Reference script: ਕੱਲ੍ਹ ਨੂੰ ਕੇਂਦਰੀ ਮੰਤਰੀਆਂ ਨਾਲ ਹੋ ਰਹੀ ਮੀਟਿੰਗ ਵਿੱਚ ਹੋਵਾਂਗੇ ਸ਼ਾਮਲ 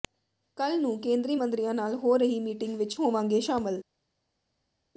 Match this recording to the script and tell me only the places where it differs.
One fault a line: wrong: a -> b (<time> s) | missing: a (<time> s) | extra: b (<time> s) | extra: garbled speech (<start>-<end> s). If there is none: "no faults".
no faults